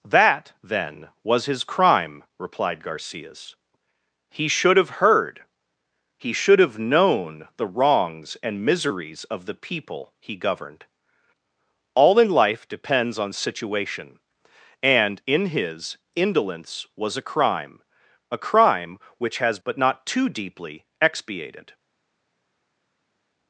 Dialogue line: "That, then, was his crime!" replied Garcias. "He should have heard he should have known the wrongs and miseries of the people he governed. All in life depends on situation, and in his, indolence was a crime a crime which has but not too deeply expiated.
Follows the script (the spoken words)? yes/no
yes